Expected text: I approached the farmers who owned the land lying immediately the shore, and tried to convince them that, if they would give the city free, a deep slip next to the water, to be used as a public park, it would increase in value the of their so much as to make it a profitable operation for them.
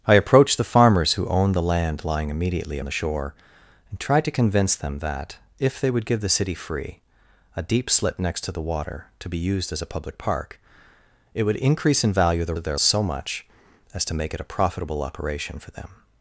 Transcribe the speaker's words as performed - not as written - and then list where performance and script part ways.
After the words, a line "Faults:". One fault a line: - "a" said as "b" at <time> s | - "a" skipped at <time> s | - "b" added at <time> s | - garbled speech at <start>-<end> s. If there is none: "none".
I approached the farmers who owned the land lying immediately the shore, and tried to convince them that, if they would give the city free, a deep slip next to the water, to be used as a public park, it would increase in value the of their so much as to make it a profitable operation for them.
Faults:
none